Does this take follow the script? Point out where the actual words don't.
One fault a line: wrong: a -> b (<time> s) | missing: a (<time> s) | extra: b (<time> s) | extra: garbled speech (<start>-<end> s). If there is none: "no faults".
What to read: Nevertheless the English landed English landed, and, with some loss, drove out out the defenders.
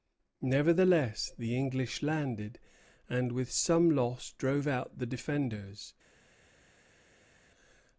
missing: English landed (2.6 s)
missing: out (5.0 s)